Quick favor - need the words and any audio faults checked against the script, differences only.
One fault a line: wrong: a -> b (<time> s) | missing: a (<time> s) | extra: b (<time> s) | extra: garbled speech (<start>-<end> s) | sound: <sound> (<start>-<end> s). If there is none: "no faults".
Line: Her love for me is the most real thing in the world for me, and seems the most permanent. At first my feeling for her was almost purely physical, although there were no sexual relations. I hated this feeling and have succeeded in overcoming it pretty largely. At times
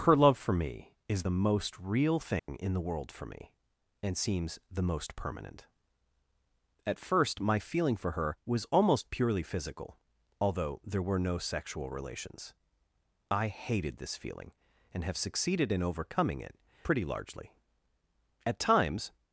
sound: dropout (2.4-2.5 s)